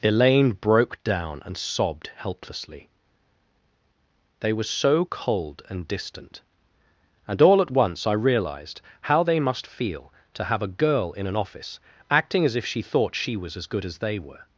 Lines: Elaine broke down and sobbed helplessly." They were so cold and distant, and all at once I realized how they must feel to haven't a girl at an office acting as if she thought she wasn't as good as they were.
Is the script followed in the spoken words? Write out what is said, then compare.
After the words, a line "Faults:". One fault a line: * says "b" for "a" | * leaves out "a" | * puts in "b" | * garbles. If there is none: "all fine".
Elaine broke down and sobbed helplessly." They were so cold and distant, and all at once I realized how they must feel to have a girl in an office acting as if she thought she was as good as they were.
Faults:
* says "have" for "haven't"
* says "in" for "at"
* says "was" for "wasn't"